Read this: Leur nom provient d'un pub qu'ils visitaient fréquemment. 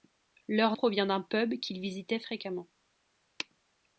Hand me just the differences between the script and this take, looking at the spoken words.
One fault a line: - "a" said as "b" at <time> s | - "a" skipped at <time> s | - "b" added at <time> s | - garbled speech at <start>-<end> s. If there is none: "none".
- "nom" skipped at 0.8 s